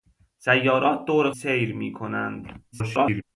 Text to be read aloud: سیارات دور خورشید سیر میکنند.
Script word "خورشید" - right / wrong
wrong